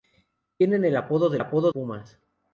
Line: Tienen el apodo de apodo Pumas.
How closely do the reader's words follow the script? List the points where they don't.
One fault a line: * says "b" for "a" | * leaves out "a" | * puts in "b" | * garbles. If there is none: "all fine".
all fine